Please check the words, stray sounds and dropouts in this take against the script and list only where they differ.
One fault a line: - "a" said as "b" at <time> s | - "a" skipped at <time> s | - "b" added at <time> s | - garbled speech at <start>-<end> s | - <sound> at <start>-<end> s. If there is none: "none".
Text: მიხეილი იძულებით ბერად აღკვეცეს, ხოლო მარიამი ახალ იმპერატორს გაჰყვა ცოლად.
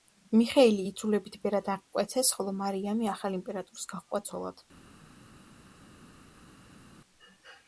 none